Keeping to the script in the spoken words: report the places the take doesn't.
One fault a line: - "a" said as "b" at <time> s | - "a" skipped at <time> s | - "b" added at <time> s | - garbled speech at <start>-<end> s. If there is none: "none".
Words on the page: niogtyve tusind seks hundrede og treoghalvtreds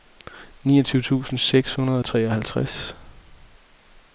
none